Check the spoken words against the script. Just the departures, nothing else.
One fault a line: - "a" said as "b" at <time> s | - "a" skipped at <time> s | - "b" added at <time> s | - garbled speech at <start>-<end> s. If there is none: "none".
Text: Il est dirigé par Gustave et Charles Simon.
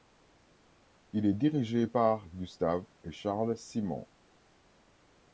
none